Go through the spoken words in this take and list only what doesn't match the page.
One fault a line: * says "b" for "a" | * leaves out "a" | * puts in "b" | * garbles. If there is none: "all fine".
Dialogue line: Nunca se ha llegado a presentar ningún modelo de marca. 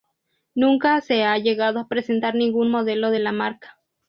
* puts in "la"